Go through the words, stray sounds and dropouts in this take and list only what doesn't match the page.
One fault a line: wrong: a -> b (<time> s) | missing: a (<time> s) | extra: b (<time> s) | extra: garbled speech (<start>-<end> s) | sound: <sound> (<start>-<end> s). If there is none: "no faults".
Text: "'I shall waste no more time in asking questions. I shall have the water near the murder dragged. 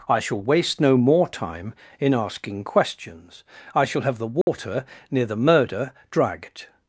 sound: dropout (4.4-4.5 s)